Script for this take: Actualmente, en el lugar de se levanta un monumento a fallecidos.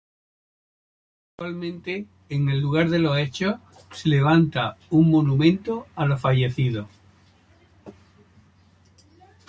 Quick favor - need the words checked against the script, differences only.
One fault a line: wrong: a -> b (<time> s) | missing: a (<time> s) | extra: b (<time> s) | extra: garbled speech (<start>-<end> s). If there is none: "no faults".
extra: los hechos (3.0 s)
extra: los (6.1 s)